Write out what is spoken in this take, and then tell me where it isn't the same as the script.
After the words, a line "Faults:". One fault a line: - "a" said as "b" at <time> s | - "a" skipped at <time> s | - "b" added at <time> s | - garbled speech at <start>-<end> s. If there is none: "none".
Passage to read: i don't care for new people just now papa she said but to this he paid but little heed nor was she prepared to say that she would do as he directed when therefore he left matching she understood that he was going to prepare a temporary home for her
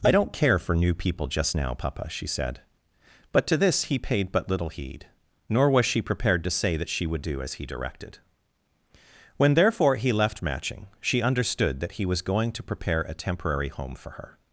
i don't care for new people just now papa she said but to this he paid but little heed nor was she prepared to say that she would do as he directed when therefore he left matching she understood that he was going to prepare a temporary home for her
Faults:
none